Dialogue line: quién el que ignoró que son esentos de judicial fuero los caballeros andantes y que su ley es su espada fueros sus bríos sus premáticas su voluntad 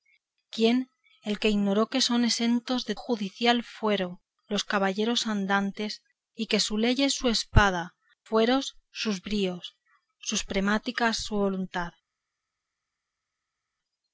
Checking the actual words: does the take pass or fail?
pass